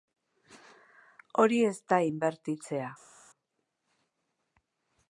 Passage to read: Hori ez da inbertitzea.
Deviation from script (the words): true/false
false